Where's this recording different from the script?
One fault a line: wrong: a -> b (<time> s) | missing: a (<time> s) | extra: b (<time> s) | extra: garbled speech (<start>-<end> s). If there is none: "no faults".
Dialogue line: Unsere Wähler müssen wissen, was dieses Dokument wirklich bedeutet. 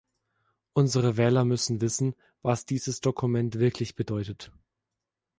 no faults